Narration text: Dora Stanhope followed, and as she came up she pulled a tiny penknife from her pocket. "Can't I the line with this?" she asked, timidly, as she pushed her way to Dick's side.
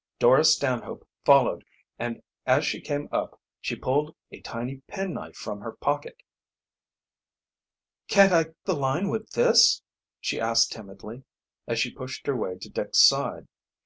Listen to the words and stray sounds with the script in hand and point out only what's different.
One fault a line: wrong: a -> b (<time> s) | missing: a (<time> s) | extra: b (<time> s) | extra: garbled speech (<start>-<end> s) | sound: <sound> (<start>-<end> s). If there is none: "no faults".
no faults